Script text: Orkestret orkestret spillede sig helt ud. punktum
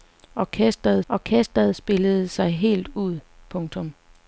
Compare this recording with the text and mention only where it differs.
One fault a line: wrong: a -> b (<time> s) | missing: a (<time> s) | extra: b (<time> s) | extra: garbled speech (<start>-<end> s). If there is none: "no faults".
no faults